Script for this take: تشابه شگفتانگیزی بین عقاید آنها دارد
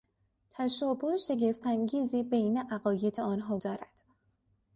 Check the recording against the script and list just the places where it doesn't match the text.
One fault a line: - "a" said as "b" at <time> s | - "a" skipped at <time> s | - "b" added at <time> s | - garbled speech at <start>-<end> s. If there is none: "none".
none